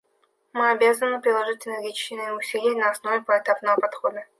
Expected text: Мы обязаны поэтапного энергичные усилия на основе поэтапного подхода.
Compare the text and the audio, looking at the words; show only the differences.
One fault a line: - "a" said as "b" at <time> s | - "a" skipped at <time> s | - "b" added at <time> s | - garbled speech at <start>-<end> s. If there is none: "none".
- "поэтапного" said as "приложить" at 1.2 s